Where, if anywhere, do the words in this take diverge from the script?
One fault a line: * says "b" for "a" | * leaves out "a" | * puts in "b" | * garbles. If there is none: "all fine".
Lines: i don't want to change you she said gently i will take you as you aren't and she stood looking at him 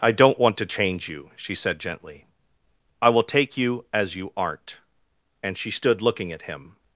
all fine